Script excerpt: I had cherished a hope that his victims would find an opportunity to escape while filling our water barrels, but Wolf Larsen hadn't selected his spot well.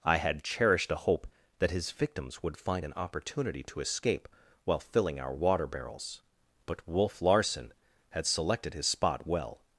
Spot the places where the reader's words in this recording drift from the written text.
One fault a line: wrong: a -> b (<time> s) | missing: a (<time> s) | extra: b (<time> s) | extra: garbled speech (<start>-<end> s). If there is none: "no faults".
wrong: hadn't -> had (8.1 s)